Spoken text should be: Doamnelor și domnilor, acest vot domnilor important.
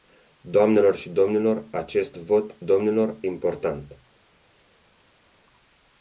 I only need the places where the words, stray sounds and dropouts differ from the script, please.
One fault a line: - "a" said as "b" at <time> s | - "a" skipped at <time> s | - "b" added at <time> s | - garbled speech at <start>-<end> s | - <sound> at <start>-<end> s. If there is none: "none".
none